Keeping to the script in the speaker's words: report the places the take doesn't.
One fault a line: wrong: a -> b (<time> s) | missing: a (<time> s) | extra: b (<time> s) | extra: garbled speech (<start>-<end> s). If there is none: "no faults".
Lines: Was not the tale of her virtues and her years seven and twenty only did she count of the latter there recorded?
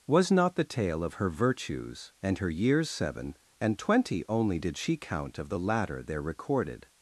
no faults